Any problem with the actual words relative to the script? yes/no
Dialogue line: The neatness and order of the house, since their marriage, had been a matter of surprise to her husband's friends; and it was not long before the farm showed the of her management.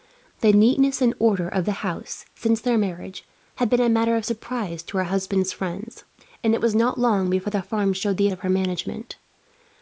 no